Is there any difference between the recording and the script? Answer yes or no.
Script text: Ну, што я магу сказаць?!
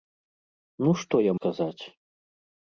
yes